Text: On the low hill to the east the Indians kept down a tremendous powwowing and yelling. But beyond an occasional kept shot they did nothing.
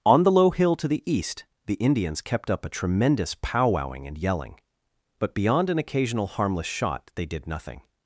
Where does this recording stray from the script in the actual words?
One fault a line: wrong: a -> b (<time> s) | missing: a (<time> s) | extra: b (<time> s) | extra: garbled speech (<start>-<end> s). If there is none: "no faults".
wrong: down -> up (2.5 s)
wrong: kept -> harmless (6.2 s)